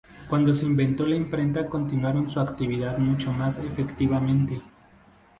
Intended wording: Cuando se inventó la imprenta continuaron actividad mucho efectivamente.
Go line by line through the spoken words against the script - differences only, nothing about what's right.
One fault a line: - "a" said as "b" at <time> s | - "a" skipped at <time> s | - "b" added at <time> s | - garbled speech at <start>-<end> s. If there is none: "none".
- "su" added at 2.3 s
- "más" added at 3.3 s